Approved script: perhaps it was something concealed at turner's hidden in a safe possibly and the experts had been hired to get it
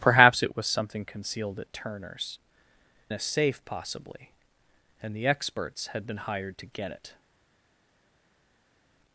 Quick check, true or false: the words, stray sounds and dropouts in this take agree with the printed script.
false